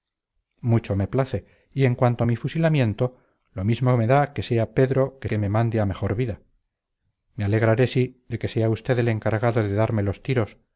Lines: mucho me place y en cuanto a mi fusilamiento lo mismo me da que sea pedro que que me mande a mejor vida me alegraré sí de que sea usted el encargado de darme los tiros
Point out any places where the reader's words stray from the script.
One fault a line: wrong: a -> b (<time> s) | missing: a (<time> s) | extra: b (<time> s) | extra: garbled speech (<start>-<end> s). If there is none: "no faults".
no faults